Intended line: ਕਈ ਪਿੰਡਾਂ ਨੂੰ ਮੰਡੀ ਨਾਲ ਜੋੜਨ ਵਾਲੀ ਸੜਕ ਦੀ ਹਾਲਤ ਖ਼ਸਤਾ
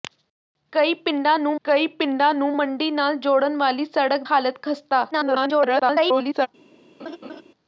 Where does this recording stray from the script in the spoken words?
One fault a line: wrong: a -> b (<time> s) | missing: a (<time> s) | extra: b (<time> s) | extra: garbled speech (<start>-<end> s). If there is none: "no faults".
extra: ਕਈ ਪਿੰਡਾਂ ਨੂੰ (1.7 s)
missing: ਦੀ (4.2 s)
extra: garbled speech (5.1-6.5 s)